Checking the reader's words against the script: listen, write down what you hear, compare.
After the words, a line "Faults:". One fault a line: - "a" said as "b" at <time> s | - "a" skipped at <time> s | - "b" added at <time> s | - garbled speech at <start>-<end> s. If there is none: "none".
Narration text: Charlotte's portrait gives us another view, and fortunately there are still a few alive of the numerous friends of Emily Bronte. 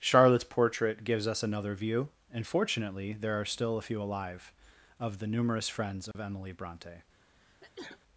Charlotte's portrait gives us another view, and fortunately there are still a few alive of the numerous friends of Emily Bronte.
Faults:
none